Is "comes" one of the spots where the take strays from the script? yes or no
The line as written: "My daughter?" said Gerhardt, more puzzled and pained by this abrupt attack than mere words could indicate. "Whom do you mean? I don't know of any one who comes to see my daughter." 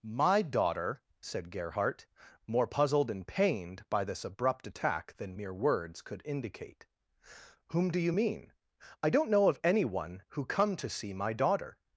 yes